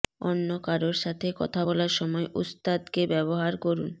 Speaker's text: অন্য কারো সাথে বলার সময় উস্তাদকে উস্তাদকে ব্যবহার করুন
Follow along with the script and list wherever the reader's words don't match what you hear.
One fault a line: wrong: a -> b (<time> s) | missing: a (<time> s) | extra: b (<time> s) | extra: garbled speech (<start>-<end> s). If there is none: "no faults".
extra: কথা (1.4 s)
missing: উস্তাদকে (3.0 s)